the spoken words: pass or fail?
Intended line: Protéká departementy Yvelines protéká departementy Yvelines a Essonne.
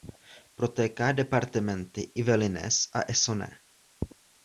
fail